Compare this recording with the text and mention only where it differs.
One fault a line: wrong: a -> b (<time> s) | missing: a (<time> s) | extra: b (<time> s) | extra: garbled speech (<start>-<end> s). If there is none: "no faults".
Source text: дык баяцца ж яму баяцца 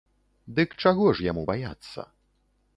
wrong: баяцца -> чаго (0.8 s)